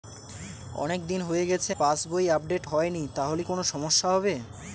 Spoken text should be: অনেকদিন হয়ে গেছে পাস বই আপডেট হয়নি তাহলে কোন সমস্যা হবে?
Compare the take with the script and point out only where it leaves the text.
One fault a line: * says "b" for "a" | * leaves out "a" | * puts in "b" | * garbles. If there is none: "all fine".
all fine